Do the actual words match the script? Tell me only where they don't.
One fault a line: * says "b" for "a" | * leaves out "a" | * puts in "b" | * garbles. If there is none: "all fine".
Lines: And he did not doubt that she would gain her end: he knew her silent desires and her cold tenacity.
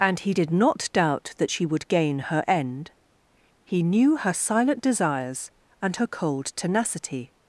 all fine